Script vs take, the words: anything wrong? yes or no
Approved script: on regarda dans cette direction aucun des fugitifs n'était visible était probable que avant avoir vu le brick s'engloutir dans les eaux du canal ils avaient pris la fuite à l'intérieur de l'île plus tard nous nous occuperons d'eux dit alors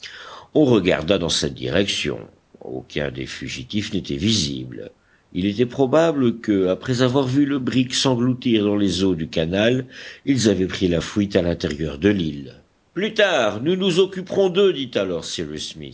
yes